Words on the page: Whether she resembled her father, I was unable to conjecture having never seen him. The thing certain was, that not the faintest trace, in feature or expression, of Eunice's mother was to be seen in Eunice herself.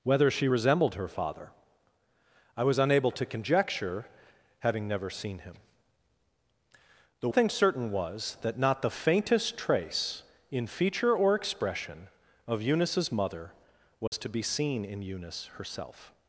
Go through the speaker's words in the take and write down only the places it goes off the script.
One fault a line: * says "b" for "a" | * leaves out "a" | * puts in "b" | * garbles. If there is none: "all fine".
all fine